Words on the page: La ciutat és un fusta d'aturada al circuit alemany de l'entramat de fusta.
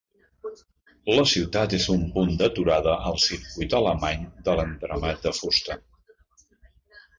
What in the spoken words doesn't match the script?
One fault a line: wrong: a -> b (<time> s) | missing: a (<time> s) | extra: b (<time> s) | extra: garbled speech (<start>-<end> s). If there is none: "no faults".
wrong: fusta -> punt (2.1 s)